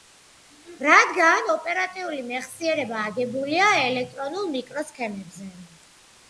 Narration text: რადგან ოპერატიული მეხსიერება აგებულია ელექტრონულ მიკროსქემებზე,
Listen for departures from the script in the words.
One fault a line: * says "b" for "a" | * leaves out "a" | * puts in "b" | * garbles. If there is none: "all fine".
all fine